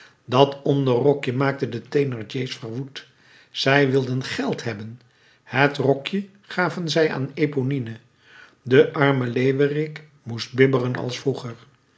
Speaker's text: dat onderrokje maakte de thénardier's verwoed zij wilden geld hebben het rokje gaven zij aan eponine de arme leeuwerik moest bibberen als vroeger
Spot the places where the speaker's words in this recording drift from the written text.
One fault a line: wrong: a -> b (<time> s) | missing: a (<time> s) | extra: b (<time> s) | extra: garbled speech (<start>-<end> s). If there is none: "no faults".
no faults